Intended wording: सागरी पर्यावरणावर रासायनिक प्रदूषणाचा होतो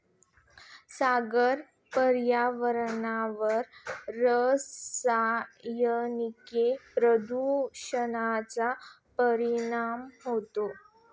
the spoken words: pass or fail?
fail